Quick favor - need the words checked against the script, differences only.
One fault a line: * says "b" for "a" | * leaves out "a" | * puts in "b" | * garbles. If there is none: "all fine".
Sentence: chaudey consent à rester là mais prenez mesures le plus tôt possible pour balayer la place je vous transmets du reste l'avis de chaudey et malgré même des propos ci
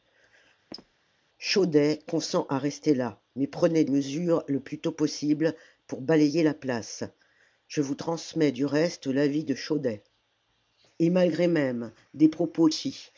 all fine